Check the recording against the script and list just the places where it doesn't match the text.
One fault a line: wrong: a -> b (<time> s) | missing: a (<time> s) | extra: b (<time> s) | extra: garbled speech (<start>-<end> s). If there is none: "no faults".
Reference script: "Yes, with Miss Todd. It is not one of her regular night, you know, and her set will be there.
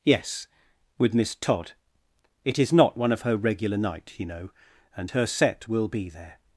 no faults